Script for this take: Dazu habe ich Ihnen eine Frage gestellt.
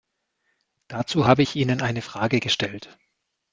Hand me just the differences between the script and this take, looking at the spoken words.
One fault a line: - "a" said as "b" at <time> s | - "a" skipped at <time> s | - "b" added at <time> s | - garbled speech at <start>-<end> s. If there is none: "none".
none